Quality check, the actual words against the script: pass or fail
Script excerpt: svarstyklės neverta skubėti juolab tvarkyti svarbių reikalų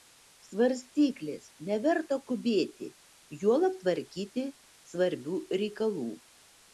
pass